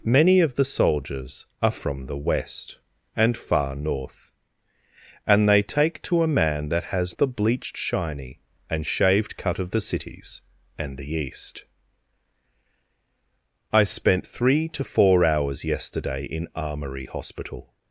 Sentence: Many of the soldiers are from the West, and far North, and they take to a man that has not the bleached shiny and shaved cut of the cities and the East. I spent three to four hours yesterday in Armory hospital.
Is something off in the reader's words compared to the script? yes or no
yes